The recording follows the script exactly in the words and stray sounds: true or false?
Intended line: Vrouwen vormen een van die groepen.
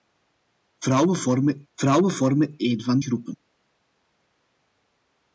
false